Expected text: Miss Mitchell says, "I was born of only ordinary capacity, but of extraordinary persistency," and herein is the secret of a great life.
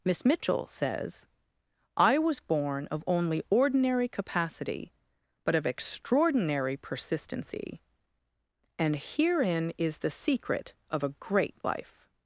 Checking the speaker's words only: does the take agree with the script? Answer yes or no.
yes